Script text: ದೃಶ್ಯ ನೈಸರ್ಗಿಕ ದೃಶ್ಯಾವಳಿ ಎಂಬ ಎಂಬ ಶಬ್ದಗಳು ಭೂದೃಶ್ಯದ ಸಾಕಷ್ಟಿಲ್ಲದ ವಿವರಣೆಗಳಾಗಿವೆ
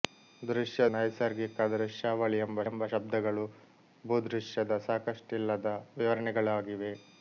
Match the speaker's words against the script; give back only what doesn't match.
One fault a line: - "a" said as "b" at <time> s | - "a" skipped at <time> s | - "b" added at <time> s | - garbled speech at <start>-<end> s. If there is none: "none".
none